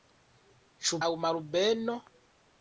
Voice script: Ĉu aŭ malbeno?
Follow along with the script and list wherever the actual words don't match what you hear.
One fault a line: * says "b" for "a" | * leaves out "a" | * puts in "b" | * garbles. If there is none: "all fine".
all fine